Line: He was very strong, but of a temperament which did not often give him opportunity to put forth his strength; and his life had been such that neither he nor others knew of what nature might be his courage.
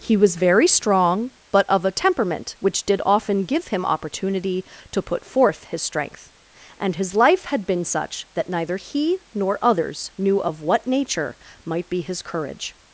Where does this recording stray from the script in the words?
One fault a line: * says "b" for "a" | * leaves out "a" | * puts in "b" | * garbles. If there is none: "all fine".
* leaves out "not"